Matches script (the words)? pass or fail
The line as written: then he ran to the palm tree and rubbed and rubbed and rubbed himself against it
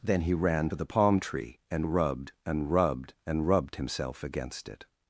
pass